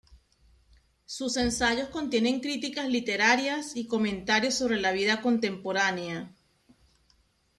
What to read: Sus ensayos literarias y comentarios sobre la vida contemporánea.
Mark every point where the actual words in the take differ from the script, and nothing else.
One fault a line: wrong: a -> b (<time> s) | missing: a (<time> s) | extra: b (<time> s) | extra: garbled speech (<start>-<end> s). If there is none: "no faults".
extra: contienen críticas (1.9 s)